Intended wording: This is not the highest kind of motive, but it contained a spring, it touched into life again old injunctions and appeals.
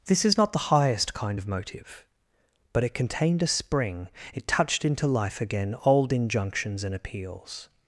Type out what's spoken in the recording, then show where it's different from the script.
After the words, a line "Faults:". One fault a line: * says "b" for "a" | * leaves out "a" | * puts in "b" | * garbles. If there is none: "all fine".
This is not the highest kind of motive, but it contained a spring, it touched into life again old injunctions and appeals.
Faults:
all fine